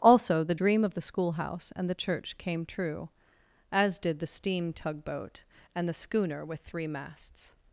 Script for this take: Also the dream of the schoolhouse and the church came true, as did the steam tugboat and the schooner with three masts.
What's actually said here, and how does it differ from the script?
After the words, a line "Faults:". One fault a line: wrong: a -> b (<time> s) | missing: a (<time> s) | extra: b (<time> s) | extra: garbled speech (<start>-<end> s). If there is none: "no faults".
Also the dream of the schoolhouse and the church came true, as did the steam tugboat and the schooner with three masts.
Faults:
no faults